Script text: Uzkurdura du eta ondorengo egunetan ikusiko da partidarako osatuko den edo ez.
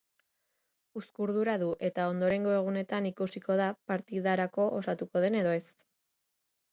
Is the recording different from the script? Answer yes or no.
no